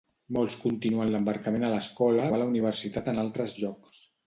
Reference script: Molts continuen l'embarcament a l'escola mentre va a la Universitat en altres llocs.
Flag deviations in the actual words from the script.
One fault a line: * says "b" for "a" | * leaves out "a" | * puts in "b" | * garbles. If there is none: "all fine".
* leaves out "mentre"